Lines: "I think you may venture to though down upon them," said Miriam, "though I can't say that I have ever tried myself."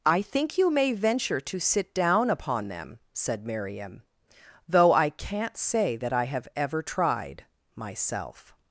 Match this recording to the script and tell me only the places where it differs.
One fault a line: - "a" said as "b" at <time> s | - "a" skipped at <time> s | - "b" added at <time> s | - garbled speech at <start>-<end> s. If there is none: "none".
- "though" said as "sit" at 1.6 s